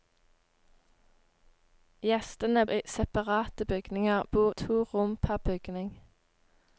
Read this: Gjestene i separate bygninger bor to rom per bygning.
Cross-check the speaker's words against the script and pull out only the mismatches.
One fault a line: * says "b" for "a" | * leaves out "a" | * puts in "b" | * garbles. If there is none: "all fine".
all fine